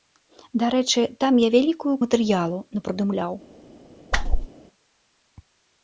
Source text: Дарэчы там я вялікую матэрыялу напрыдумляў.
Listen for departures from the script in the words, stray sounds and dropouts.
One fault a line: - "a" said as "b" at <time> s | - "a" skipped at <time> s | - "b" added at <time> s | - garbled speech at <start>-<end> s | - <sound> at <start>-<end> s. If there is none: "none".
- whoosh at 4.1-4.5 s